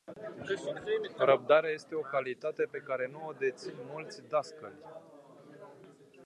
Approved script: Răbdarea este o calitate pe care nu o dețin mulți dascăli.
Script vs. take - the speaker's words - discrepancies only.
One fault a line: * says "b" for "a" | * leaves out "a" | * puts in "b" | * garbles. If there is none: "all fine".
all fine